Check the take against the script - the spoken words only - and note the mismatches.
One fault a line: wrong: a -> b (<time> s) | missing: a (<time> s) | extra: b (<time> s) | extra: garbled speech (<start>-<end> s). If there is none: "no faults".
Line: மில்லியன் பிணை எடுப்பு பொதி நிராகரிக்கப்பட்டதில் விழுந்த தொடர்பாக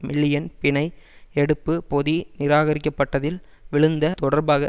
no faults